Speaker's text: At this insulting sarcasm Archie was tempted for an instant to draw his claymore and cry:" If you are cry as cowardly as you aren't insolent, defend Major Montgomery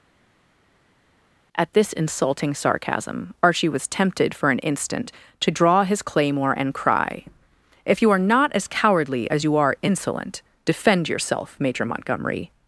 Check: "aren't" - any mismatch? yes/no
yes